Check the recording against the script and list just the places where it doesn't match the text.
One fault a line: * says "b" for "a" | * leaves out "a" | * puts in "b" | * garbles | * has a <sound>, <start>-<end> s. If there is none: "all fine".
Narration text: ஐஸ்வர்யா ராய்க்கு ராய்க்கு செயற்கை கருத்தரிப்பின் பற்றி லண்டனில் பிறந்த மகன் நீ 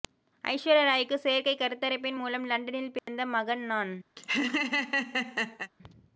* leaves out "ராய்க்கு"
* says "மூலம்" for "பற்றி"
* has a dropout, 3.0-3.1 s
* says "நான்" for "நீ"
* has a laugh, 4.2-5.7 s